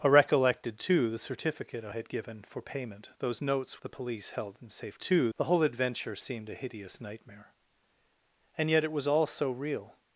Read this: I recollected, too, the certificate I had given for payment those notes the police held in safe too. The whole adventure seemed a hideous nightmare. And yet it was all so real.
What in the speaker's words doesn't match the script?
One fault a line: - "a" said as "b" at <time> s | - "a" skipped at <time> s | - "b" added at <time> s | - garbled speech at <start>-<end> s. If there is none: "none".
none